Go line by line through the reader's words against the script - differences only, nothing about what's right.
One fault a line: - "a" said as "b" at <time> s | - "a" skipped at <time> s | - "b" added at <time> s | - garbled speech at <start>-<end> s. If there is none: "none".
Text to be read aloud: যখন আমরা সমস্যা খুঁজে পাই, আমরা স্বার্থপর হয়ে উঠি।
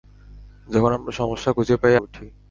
- "আমরা স্বার্থপর হয়ে" skipped at 1.9 s